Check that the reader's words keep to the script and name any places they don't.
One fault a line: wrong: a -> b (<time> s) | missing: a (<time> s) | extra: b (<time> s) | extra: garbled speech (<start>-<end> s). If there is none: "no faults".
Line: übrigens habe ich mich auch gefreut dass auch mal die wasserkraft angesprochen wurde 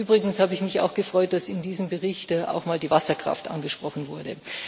extra: in diesem bericht (1.5 s)